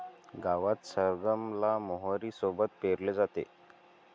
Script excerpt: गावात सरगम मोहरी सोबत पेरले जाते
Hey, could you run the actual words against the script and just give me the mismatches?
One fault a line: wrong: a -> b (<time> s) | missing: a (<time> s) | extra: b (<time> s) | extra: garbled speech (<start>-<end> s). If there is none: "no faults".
extra: ला (1.6 s)